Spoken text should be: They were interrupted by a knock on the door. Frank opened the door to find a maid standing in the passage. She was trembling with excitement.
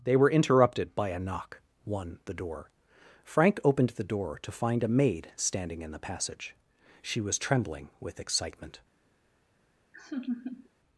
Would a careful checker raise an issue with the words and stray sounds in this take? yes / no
yes